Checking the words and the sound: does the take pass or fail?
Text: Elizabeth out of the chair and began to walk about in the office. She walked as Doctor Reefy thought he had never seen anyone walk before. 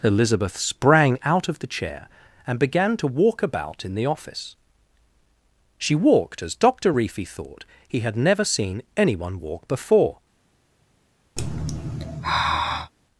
fail